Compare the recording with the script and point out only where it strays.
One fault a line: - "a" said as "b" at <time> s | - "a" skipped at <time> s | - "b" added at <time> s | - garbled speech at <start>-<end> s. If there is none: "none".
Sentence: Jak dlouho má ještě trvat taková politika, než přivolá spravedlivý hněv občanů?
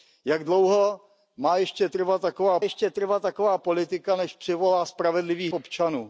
- "ještě trvat taková" added at 2.6 s
- "hněv" skipped at 5.5 s